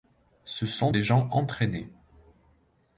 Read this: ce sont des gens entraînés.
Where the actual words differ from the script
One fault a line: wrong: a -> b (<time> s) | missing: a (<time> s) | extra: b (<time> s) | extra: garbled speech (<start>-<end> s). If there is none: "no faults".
no faults